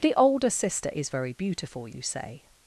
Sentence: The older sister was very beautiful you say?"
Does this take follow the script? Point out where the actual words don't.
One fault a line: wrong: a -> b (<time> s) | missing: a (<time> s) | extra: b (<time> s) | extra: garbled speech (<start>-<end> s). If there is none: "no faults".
wrong: was -> is (0.9 s)